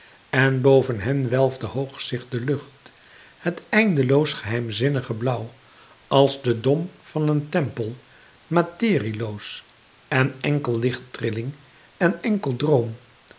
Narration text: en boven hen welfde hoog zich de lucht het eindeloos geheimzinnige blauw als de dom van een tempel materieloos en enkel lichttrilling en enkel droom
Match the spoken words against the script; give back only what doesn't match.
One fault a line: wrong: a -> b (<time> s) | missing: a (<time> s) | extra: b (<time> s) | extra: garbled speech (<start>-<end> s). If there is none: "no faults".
no faults